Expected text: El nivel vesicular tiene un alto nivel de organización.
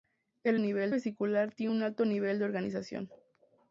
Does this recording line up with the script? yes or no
yes